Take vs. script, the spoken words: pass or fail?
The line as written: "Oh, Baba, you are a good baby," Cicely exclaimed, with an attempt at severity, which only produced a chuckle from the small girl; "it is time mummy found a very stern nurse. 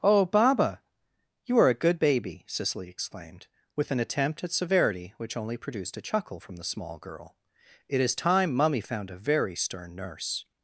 pass